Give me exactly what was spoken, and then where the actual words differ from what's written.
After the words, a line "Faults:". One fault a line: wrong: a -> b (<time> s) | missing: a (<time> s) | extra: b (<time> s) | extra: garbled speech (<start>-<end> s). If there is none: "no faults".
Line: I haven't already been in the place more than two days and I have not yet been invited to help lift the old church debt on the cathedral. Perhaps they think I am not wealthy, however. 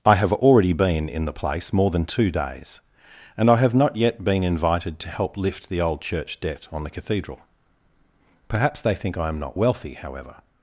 I have already been in the place more than two days and I have not yet been invited to help lift the old church debt on the cathedral. Perhaps they think I am not wealthy, however.
Faults:
wrong: haven't -> have (0.1 s)